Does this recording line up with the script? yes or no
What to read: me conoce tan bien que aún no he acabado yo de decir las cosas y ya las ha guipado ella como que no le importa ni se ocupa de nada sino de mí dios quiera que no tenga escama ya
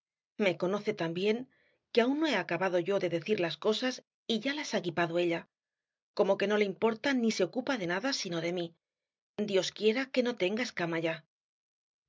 yes